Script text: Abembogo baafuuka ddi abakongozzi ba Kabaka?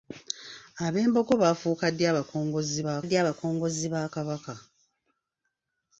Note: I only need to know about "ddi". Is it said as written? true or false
true